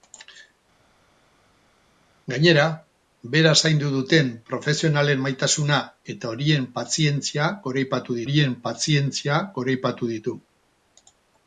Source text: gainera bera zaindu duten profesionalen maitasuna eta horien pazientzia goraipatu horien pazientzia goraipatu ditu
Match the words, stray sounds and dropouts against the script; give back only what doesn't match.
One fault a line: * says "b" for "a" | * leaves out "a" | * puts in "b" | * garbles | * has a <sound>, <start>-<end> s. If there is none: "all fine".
all fine